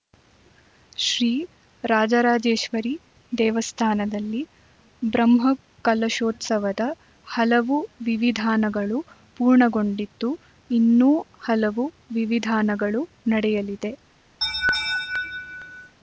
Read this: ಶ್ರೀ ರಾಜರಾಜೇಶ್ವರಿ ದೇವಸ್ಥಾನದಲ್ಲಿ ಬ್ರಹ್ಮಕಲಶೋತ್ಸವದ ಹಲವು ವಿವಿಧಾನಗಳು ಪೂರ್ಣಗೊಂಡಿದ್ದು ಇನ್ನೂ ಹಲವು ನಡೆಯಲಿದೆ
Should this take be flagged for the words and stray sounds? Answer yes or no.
yes